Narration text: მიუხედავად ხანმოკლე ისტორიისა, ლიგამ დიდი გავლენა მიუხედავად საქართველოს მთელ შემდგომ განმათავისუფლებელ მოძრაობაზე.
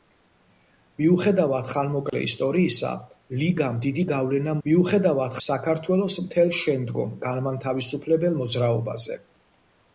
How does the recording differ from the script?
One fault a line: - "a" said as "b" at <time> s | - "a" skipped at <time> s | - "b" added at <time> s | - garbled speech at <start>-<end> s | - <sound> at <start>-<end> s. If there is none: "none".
- dropout at 2.1-2.1 s